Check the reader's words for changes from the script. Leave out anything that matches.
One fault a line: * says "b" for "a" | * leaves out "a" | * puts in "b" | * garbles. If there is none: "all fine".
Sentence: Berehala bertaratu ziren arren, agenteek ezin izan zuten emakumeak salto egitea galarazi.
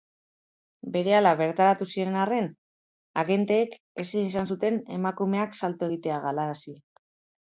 all fine